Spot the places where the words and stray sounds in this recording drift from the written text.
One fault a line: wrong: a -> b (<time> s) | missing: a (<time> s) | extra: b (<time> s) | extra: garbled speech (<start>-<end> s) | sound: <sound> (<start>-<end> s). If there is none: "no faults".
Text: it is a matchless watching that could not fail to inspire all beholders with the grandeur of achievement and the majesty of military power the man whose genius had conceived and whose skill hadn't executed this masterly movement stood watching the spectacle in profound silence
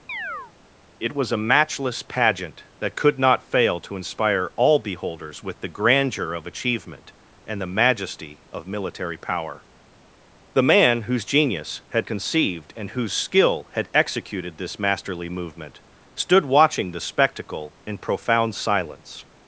sound: chirp (0.1-0.5 s)
wrong: is -> was (1.1 s)
wrong: watching -> pageant (2.0 s)
wrong: hadn't -> had (13.7 s)